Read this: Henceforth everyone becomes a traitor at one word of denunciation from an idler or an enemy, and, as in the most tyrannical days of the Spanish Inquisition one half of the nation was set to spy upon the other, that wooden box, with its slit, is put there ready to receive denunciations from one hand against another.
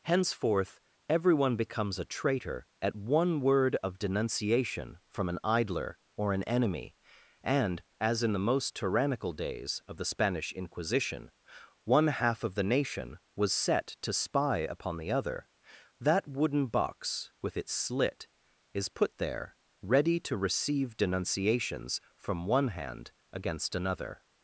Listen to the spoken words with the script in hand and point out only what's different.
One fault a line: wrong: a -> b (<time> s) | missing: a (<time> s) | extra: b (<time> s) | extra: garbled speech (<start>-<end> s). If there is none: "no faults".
no faults